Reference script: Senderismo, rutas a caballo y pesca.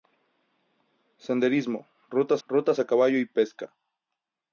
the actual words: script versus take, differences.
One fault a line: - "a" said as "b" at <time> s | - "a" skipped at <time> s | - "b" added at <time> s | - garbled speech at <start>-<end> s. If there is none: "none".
- "rutas" added at 2.5 s